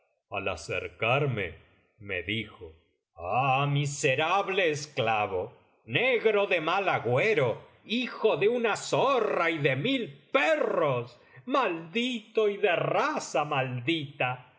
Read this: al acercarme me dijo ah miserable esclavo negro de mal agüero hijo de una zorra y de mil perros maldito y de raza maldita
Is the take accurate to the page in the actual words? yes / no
yes